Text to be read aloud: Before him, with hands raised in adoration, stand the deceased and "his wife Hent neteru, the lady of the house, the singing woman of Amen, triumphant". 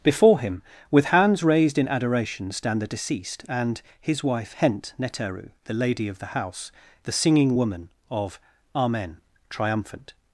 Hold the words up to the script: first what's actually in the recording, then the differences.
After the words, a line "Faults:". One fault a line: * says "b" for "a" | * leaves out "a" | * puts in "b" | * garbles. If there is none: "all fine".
Before him, with hands raised in adoration, stand the deceased and "his wife Hent neteru, the lady of the house, the singing woman of Amen, triumphant".
Faults:
all fine